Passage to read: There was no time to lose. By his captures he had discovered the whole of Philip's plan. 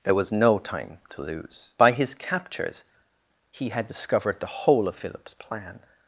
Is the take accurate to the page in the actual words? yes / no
yes